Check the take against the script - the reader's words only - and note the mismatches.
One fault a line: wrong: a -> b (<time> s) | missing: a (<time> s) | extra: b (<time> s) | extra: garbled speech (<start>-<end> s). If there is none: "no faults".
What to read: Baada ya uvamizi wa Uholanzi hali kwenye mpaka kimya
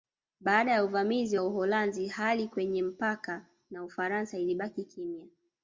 extra: na Ufaransa ilibaki (3.7 s)